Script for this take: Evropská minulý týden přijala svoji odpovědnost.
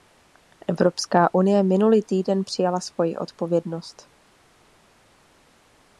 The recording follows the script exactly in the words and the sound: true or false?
false